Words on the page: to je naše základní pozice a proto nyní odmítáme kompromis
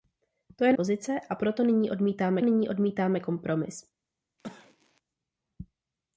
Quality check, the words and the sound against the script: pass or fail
fail